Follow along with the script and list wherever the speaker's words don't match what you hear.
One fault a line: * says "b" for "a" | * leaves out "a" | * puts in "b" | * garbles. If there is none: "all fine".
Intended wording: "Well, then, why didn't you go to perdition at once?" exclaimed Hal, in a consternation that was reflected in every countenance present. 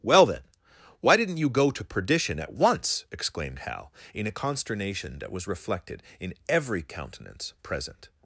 all fine